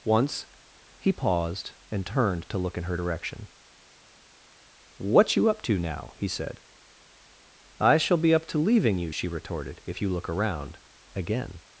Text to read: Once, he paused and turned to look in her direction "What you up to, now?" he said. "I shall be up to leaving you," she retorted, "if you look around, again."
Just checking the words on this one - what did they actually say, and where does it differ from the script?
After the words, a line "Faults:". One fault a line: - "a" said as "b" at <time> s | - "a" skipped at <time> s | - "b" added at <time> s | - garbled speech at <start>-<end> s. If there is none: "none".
Once, he paused and turned to look in her direction "What you up to, now?" he said. "I shall be up to leaving you," she retorted, "if you look around, again."
Faults:
none